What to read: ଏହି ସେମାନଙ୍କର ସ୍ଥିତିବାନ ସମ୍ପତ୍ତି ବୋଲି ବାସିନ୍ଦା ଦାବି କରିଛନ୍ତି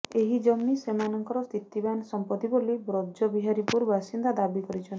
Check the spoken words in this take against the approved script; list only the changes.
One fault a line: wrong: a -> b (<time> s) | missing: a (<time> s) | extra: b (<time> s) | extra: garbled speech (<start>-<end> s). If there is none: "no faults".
extra: ଜମି (0.5 s)
extra: ବ୍ରଜବିହାରୀପୁର (2.8 s)